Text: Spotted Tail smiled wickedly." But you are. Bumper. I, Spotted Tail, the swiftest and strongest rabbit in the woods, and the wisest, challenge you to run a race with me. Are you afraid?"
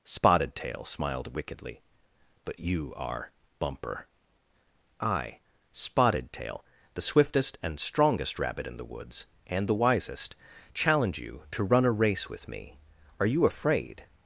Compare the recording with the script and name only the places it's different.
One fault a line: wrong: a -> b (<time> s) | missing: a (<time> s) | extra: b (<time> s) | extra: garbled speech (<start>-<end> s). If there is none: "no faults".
no faults